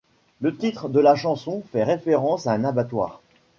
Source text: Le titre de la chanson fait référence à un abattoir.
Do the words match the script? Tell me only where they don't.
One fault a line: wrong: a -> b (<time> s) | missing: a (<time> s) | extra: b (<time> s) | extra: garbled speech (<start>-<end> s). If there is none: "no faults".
no faults